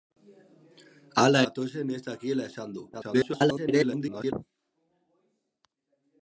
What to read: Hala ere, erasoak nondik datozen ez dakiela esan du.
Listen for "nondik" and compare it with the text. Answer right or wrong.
wrong